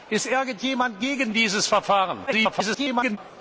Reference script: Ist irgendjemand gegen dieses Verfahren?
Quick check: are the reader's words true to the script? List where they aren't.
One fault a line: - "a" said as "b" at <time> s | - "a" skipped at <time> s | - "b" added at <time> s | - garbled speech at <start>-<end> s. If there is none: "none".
- garbled speech at 2.3-3.2 s